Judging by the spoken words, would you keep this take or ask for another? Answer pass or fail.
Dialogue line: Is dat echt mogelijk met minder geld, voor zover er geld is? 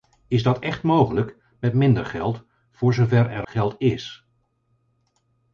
pass